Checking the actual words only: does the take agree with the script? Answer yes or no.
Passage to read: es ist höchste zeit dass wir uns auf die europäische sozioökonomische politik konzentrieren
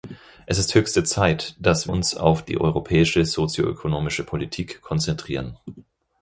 no